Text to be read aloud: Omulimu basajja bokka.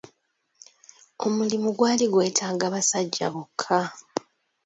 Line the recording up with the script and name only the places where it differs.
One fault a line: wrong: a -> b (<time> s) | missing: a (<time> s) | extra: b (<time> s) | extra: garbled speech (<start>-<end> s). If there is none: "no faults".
extra: gwali gwetaaga (1.8 s)